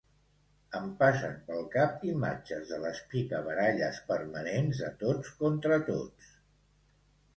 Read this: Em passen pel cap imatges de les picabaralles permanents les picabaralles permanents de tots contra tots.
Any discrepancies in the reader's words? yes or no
yes